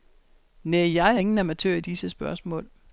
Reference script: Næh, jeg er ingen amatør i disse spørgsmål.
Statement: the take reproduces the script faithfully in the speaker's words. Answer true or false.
true